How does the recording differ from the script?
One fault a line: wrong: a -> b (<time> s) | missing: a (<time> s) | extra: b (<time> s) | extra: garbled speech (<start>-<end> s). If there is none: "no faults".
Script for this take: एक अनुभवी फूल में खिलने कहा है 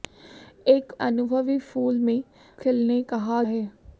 no faults